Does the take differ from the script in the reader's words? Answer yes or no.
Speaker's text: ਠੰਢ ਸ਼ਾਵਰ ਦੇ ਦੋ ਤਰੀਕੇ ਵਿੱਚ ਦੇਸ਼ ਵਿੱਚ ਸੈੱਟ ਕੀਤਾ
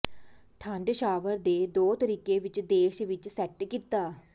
no